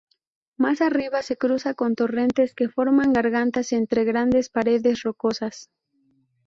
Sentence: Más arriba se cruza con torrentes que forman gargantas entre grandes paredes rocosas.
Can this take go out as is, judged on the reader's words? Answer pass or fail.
pass